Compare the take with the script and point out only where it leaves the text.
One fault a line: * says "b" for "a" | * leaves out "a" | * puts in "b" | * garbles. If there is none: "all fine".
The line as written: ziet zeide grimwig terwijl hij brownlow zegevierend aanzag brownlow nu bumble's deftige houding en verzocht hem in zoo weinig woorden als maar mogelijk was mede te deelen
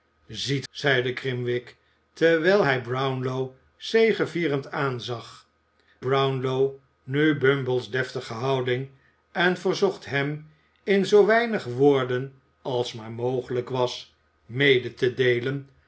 all fine